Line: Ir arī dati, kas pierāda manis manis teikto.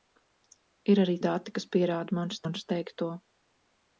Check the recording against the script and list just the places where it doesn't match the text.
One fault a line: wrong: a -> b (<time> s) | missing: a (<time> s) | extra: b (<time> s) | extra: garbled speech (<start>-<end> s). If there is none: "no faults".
no faults